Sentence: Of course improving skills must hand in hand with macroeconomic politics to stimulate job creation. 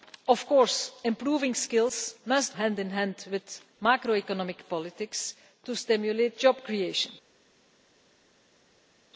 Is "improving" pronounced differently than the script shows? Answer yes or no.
no